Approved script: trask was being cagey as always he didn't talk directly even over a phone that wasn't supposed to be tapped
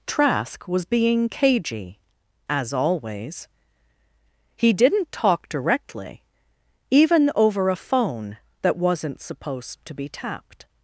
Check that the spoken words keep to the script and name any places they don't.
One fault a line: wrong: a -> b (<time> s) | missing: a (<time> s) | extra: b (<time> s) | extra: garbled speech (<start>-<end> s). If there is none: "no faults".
no faults